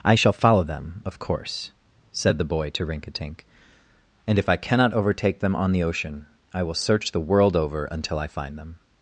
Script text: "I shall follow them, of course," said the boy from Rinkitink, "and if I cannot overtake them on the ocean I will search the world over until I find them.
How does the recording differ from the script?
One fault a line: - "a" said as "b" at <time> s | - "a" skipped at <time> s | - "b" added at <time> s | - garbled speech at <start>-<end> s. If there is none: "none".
- "from" said as "to" at 2.7 s